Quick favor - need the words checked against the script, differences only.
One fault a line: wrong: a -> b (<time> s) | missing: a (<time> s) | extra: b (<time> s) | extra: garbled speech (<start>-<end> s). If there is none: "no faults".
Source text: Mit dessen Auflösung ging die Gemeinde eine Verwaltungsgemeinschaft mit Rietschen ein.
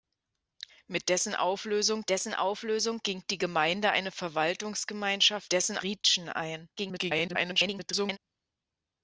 extra: dessen Auflösung (2.1 s)
wrong: mit -> dessen (5.5 s)
extra: garbled speech (6.8-8.2 s)